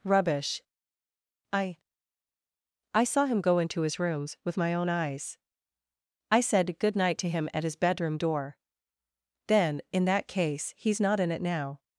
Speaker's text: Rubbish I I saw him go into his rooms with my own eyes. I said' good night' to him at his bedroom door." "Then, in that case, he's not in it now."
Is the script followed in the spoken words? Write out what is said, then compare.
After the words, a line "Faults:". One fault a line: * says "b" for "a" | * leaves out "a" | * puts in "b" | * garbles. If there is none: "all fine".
Rubbish I I saw him go into his rooms with my own eyes. I said' good night' to him at his bedroom door." "Then, in that case, he's not in it now."
Faults:
all fine